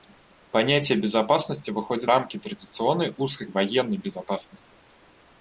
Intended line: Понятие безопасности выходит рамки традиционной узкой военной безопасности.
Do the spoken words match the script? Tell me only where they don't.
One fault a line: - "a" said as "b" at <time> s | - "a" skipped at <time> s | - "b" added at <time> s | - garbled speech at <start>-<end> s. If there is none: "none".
none